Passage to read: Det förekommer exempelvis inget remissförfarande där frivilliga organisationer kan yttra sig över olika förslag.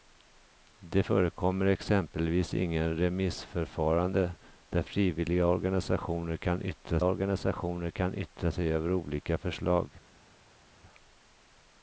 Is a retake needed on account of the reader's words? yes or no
yes